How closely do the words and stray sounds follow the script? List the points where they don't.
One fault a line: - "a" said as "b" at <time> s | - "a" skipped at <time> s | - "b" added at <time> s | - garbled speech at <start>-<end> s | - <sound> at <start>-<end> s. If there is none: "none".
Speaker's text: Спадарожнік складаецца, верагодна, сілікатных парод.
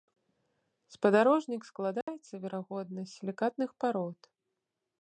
- dropout at 2.0-2.1 s
- "з" added at 3.0 s